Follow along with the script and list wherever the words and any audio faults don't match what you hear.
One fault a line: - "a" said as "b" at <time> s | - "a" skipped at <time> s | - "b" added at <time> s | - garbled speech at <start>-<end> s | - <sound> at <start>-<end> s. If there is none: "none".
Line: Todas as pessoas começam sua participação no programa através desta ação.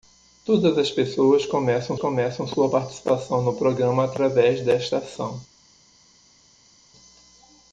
- "começam" added at 2.0 s